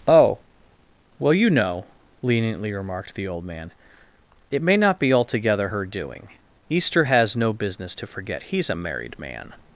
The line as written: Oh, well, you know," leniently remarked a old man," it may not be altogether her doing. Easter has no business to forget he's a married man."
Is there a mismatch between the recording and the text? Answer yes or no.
yes